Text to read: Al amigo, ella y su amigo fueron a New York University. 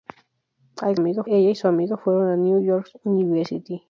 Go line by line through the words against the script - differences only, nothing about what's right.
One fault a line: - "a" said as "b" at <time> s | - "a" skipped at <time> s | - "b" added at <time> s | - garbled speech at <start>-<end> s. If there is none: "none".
none